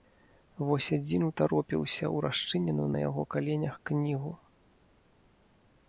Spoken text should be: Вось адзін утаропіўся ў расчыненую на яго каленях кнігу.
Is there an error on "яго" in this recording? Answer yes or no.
no